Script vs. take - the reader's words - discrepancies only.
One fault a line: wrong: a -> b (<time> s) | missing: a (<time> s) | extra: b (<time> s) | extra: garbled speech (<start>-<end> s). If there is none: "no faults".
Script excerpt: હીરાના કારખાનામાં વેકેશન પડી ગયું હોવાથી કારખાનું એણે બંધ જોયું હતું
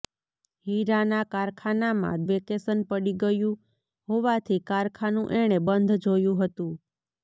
no faults